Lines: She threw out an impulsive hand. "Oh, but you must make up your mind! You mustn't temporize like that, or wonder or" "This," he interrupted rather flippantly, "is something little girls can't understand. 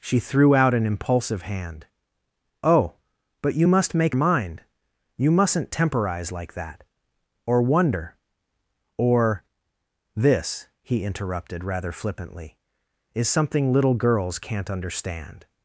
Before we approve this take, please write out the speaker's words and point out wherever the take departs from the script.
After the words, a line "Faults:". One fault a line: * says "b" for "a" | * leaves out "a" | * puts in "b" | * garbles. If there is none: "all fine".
She threw out an impulsive hand. "Oh, but you must make mind! You mustn't temporize like that, or wonder or" "This," he interrupted rather flippantly, "is something little girls can't understand.
Faults:
* leaves out "up your"